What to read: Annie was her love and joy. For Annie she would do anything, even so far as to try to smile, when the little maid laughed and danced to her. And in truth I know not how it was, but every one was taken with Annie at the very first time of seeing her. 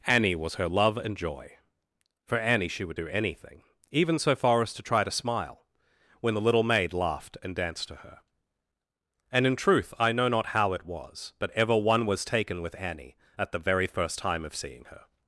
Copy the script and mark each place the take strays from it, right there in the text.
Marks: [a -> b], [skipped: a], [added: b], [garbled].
Annie was her love and joy. For Annie she would do anything, even so far as to try to smile, when the little maid laughed and danced to her. And in truth I know not how it was, but [every -> ever] one was taken with Annie at the very first time of seeing her.